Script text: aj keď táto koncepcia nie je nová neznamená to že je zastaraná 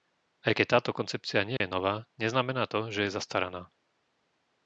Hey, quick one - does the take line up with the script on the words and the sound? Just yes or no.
no